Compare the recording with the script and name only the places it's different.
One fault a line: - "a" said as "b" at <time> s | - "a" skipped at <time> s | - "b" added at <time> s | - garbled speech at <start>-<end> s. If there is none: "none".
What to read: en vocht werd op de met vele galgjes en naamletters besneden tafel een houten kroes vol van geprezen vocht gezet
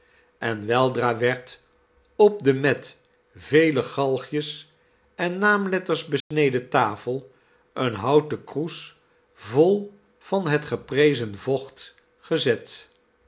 - "vocht" said as "weldra" at 0.7 s
- "het" added at 10.5 s